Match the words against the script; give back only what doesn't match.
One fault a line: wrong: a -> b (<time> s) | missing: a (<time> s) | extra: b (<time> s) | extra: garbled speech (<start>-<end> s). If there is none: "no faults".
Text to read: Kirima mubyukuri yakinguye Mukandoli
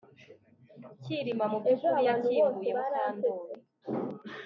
no faults